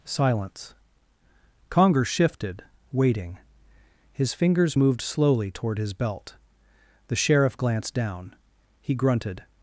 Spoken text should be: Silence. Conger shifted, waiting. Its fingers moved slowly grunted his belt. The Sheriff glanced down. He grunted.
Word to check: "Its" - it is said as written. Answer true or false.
false